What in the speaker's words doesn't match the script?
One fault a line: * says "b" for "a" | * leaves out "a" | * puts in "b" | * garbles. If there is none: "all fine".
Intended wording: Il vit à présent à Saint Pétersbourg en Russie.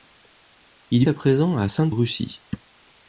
* leaves out "vit"
* leaves out "Pétersbourg en"